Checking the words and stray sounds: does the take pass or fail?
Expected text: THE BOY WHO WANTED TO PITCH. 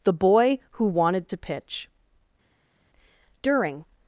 fail